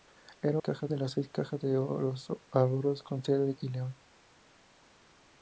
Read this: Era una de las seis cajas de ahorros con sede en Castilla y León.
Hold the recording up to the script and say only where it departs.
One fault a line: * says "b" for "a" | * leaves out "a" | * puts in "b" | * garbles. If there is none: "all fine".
* says "cajas" for "una"
* leaves out "Castilla"